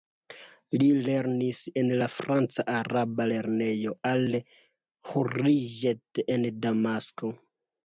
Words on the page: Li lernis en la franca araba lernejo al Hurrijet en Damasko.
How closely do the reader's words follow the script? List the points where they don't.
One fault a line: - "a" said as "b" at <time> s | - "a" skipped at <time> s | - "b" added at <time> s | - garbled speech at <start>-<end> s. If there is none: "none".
none